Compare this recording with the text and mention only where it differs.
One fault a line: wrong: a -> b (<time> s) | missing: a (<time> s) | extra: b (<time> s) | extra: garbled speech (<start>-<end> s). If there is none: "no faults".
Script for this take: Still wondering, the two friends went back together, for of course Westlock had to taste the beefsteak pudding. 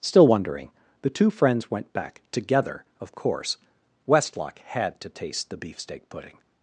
missing: for (2.8 s)